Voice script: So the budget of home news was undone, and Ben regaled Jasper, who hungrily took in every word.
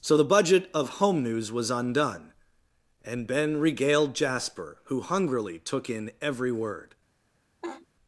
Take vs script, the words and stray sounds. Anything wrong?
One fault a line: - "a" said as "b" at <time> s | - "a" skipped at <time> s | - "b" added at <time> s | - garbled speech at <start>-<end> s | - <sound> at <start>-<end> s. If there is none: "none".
- laugh at 7.6-7.9 s